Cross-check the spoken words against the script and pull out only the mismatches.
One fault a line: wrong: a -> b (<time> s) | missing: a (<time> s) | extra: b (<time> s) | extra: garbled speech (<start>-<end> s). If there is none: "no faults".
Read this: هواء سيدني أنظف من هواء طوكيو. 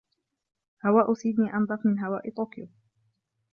no faults